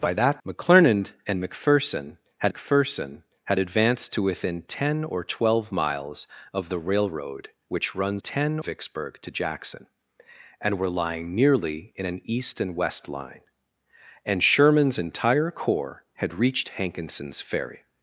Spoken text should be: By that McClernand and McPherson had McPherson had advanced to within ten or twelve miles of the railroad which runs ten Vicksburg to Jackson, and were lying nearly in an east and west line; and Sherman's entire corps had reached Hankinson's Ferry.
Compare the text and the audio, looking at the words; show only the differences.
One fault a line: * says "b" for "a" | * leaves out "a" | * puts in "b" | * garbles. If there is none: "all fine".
all fine